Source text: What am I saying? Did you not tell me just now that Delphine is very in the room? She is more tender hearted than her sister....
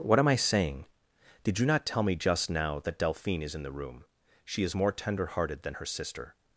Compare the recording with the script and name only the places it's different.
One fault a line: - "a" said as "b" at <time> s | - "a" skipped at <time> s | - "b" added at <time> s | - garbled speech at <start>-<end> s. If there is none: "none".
- "very" skipped at 3.5 s